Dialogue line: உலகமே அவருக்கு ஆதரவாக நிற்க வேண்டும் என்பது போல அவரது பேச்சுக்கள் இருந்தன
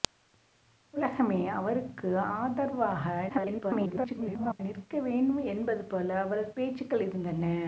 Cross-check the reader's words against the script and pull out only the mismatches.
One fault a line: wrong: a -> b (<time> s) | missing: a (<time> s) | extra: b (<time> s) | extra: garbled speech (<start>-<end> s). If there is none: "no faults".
extra: garbled speech (3.3-4.6 s)